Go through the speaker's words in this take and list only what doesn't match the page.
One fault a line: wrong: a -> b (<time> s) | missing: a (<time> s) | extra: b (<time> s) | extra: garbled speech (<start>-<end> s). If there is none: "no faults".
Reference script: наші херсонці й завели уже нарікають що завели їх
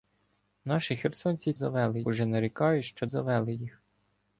no faults